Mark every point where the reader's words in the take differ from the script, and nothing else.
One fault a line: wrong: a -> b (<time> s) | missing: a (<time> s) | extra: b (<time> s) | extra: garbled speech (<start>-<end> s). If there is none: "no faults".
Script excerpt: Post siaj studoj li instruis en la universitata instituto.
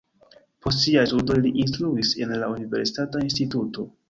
no faults